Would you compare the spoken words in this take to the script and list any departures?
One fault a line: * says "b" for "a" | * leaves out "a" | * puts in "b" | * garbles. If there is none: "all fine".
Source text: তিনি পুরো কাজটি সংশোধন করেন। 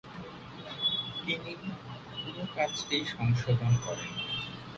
all fine